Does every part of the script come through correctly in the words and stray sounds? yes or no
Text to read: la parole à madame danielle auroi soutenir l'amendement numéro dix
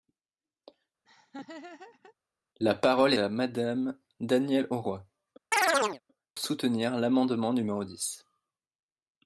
no